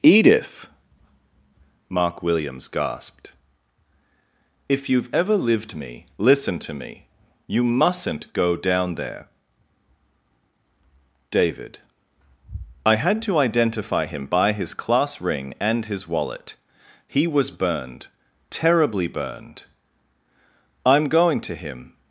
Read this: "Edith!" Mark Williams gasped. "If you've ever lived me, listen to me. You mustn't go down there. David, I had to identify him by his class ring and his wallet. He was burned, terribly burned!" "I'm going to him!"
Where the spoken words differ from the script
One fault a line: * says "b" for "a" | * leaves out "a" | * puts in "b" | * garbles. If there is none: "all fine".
all fine